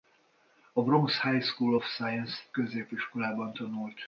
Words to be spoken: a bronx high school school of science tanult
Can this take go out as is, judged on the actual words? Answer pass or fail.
fail